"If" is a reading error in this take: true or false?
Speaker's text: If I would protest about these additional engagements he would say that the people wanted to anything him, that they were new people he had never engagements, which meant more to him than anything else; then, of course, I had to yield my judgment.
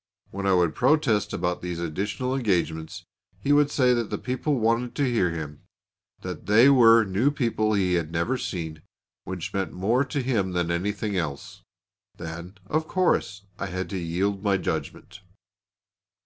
true